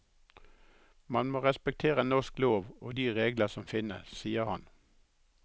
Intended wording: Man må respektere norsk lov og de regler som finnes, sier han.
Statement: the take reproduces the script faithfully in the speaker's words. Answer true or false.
true